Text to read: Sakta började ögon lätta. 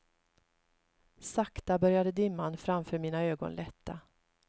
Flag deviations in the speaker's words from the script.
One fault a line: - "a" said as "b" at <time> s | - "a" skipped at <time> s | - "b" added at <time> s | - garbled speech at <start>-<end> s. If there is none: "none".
- "dimman framför mina" added at 2.1 s